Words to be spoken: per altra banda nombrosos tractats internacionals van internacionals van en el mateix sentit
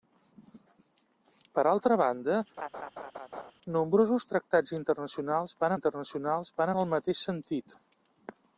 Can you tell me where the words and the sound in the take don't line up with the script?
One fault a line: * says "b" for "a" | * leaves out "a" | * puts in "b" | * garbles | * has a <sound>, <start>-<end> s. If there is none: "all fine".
* has a laugh, 2.6-3.5 s